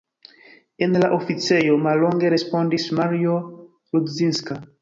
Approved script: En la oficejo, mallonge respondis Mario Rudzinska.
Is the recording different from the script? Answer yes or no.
no